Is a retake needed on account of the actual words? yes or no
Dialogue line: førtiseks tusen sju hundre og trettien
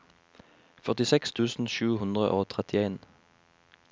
no